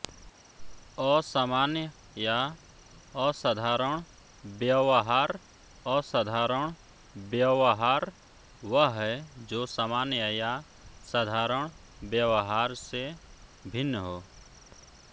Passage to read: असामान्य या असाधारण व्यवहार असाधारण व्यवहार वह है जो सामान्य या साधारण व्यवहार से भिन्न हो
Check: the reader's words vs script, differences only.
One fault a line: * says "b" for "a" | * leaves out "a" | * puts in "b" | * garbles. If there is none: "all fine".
all fine